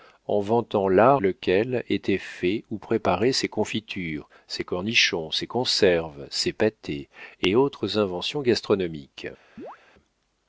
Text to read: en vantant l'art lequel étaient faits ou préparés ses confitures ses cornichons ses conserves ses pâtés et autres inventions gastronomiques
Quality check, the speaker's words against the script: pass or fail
pass